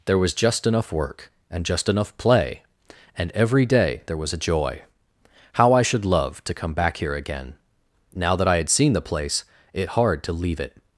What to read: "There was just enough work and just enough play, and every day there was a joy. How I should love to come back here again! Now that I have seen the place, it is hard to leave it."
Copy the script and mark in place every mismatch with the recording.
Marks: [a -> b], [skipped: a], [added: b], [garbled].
"There was just enough work and just enough play, and every day there was a joy. How I should love to come back here again! Now that I [have -> had] seen the place, it [skipped: is] hard to leave it."